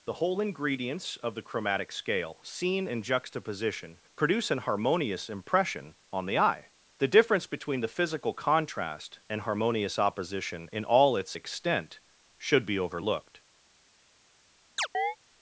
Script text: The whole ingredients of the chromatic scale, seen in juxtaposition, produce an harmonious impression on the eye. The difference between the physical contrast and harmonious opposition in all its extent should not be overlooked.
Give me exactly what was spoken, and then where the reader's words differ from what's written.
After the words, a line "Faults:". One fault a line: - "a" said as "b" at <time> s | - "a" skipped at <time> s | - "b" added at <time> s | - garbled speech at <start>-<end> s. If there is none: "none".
The whole ingredients of the chromatic scale, seen in juxtaposition, produce an harmonious impression on the eye. The difference between the physical contrast and harmonious opposition in all its extent should be overlooked.
Faults:
- "not" skipped at 12.7 s